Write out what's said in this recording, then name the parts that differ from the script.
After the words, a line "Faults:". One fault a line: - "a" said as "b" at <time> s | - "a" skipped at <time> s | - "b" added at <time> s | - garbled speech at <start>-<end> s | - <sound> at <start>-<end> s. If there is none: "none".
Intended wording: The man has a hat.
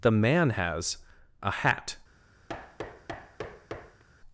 The man has a hat.
Faults:
- thud at 2.5-4.0 s